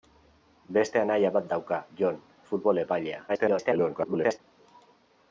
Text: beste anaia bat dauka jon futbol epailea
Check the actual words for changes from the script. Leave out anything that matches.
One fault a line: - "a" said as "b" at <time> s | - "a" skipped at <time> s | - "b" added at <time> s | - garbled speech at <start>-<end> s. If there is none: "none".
- garbled speech at 3.3-4.4 s